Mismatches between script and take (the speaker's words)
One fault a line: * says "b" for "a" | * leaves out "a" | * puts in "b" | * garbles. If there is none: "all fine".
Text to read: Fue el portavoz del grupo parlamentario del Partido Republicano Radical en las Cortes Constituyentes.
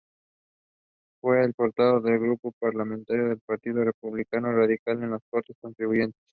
all fine